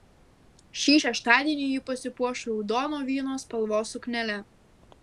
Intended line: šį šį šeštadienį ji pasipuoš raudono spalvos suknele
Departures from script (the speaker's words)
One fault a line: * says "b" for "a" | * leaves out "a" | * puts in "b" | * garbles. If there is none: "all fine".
* leaves out "šį"
* puts in "vyno"